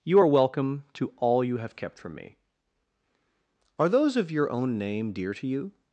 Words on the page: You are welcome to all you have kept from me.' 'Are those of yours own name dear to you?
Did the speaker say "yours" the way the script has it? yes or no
no